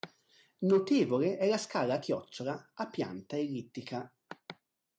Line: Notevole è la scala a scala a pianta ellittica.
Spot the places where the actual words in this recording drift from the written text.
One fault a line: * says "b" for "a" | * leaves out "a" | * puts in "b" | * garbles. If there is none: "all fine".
* says "chiocciola" for "scala"